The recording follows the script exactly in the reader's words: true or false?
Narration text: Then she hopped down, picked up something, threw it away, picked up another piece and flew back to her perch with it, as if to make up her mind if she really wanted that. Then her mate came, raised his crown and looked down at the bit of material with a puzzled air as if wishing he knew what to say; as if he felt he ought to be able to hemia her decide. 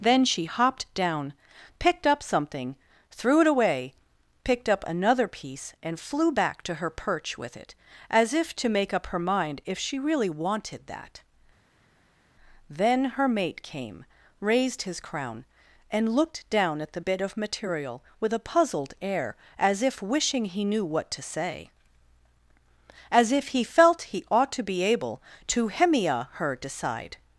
true